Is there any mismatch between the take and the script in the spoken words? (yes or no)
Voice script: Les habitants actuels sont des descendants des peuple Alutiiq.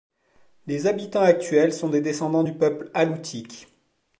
yes